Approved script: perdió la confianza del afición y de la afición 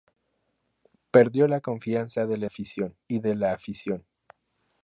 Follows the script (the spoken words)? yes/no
yes